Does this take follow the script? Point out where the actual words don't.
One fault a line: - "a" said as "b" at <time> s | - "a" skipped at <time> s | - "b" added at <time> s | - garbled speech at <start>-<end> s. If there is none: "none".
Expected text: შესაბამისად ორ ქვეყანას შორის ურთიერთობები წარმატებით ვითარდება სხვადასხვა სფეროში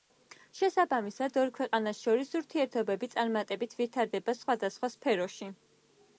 none